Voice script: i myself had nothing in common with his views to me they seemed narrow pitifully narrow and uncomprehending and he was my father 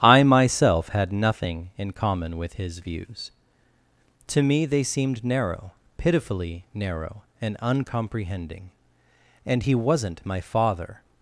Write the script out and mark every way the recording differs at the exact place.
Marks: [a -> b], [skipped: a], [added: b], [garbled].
i myself had nothing in common with his views to me they seemed narrow pitifully narrow and uncomprehending and he [was -> wasn't] my father